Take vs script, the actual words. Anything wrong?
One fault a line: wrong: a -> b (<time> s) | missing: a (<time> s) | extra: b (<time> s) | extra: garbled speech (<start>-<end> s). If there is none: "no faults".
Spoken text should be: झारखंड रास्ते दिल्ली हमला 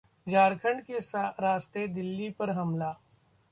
extra: के (0.8 s)
extra: पर (2.4 s)